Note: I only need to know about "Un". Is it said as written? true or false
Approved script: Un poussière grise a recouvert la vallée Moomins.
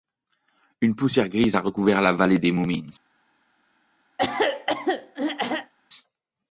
false